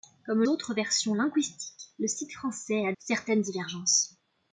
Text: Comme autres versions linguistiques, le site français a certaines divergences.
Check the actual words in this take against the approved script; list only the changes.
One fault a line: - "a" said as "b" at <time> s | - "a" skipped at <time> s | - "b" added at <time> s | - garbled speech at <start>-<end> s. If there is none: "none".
none